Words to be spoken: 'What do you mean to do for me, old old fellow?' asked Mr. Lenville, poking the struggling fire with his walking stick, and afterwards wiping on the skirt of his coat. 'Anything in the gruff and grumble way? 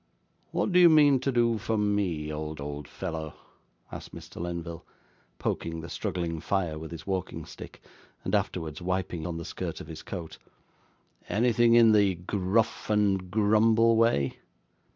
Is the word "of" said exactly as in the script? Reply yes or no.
yes